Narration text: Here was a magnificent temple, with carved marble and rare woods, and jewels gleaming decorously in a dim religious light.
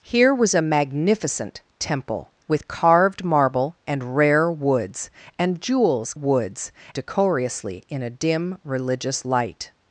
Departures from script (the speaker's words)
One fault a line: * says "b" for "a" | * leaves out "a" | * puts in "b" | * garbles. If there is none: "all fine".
* says "woods" for "gleaming"